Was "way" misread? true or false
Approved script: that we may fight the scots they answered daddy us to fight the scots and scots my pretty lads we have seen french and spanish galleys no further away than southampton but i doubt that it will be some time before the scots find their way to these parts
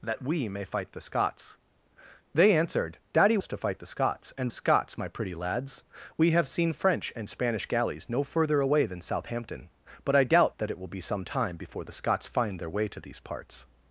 false